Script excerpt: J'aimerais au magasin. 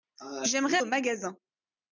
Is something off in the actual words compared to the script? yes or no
no